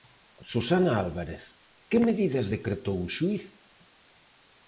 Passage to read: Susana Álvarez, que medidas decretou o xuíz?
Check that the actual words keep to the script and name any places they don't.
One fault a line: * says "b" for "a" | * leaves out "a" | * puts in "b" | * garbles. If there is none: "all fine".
all fine